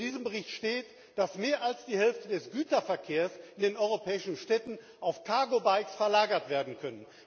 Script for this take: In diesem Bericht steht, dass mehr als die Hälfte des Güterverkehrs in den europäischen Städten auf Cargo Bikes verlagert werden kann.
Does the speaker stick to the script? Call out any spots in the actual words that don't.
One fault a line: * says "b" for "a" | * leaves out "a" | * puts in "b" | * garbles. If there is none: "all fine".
all fine